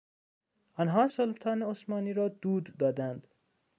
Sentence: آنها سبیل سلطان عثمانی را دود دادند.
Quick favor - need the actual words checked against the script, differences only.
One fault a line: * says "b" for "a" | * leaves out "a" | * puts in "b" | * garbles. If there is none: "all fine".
* leaves out "سبیل"